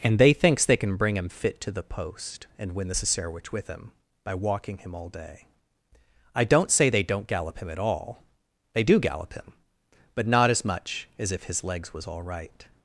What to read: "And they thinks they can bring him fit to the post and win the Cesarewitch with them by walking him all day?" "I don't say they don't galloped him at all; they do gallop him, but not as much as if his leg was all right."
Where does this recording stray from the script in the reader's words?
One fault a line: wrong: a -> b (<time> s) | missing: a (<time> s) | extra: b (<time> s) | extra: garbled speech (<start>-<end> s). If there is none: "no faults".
wrong: them -> him (3.7 s)
wrong: galloped -> gallop (7.3 s)
wrong: leg -> legs (11.6 s)